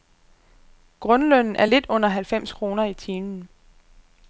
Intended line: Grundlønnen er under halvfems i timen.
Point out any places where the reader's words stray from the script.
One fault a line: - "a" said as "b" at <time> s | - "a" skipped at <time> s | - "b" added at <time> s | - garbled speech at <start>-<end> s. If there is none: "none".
- "lidt" added at 1.6 s
- "kroner" added at 2.5 s